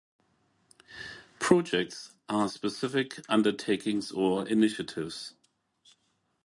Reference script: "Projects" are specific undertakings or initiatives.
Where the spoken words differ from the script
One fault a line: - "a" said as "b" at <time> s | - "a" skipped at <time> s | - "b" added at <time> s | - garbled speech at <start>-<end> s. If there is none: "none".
none